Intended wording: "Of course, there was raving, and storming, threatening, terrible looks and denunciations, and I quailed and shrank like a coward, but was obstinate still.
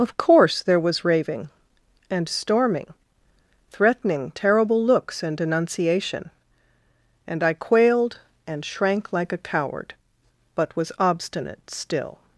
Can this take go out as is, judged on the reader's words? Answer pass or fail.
fail